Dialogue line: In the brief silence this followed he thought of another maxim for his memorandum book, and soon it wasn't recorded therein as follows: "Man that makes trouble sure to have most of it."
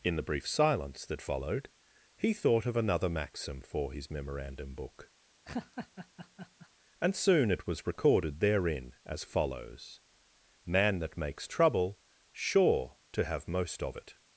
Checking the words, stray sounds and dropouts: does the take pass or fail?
fail